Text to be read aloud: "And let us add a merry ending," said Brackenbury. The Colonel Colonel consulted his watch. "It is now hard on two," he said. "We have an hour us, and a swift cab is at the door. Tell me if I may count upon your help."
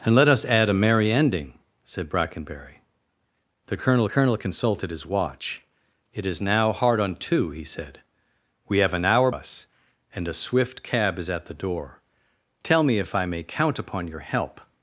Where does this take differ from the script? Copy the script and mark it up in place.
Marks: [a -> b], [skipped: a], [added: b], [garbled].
"And let us add a merry ending," said Brackenbury. The Colonel Colonel consulted his watch. "It is now hard on two," he said. "We have an hour us, and a swift cab is at the door. Tell me if I may count upon your help."